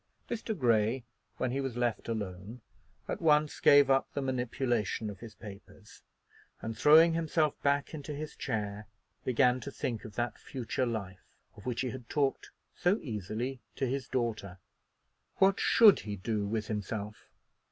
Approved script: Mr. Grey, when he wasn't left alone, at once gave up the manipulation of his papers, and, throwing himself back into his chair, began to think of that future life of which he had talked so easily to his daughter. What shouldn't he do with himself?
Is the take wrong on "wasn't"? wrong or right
wrong